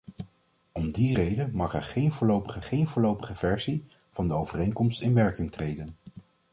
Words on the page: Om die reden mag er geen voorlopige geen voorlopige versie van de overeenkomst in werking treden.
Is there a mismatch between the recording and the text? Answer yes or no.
no